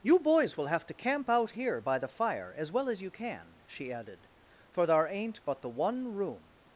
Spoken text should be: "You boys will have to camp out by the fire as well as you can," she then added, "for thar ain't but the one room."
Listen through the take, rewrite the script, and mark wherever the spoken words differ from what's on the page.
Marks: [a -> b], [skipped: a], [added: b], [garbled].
"You boys will have to camp out [added: here] by the fire as well as you can," she [skipped: then] added, "for thar ain't but the one room."